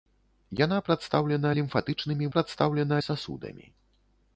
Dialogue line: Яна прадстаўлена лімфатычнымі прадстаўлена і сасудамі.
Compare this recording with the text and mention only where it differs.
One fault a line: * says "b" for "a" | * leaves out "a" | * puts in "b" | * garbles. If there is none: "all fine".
all fine